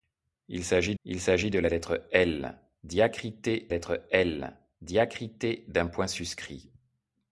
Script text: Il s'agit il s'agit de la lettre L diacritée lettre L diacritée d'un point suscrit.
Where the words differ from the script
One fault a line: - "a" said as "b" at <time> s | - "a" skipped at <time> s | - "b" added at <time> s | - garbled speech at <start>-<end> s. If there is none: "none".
none